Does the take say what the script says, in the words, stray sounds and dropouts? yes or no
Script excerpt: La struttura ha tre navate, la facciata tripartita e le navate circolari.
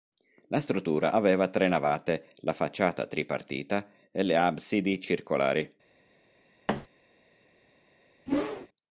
no